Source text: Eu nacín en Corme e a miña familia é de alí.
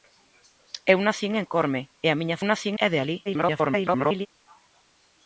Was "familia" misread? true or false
true